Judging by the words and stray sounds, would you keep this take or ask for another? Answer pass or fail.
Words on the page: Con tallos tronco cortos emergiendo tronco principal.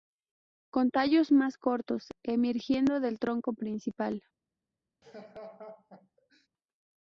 fail